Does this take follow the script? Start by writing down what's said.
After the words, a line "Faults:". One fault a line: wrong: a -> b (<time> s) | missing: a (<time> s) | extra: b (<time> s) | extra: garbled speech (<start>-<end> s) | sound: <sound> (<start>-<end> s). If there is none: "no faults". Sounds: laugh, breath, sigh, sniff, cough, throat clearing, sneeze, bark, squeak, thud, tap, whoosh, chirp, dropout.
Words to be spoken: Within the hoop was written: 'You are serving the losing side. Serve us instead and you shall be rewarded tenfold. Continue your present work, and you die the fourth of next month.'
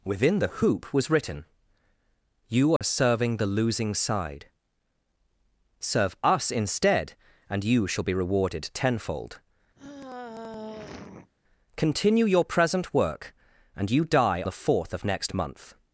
Within the hoop was written: 'You are serving the losing side. Serve us instead and you shall be rewarded tenfold. Continue your present work, and you die the fourth of next month.'
Faults:
sound: dropout (2.8-2.8 s)
sound: sigh (9.8-11.3 s)